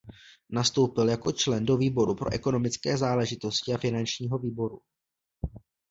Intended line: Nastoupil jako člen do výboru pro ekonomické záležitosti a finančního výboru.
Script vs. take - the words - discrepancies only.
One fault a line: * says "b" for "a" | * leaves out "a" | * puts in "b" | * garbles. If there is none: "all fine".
all fine